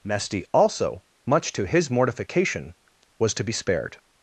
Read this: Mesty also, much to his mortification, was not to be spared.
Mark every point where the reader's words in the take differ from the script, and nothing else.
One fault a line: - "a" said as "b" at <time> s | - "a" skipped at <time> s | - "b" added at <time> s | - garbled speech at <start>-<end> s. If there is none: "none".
- "not" skipped at 3.3 s